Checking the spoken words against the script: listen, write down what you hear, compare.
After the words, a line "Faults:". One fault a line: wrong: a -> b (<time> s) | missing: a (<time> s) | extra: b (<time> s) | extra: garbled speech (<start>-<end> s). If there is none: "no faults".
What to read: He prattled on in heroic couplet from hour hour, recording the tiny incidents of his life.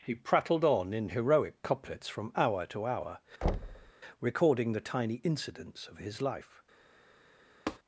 He prattled on in heroic couplets from hour to hour, recording the tiny incidents of his life.
Faults:
wrong: couplet -> couplets (1.6 s)
extra: to (2.7 s)